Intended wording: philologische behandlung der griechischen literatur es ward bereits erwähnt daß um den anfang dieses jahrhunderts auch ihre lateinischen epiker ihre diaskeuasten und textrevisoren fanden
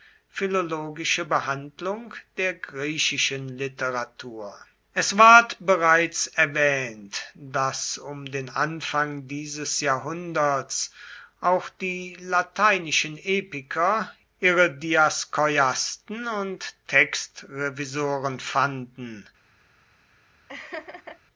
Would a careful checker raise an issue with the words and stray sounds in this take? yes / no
yes